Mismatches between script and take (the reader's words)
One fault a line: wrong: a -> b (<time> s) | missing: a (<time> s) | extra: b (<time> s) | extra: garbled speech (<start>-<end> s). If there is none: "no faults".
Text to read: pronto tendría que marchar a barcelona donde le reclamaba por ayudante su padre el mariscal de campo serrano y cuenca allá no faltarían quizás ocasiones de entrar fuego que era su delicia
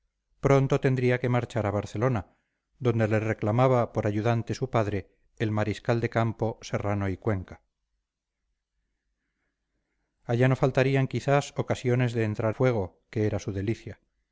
no faults